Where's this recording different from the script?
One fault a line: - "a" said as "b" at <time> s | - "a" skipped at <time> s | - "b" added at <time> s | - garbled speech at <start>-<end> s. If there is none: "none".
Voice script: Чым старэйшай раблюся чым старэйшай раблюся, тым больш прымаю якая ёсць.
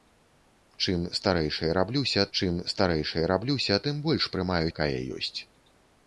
none